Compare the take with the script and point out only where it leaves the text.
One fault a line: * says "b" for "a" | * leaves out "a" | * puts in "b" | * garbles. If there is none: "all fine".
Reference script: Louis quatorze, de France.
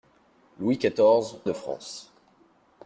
all fine